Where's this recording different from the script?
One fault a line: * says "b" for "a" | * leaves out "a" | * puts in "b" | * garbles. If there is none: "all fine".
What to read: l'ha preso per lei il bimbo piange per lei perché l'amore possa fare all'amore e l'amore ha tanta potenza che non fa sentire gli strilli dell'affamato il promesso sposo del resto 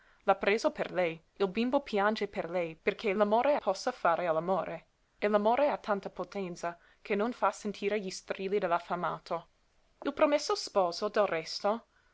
all fine